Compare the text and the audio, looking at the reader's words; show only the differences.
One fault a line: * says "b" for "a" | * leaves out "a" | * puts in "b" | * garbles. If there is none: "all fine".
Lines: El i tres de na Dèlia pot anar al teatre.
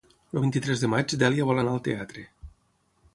* puts in "vint"
* puts in "maig"
* says "vol" for "pot"